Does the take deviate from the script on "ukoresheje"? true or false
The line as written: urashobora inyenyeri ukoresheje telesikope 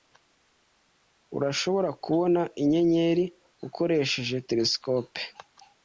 false